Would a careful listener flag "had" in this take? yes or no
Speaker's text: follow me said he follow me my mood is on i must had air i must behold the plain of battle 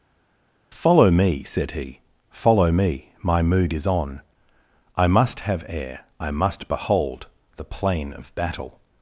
yes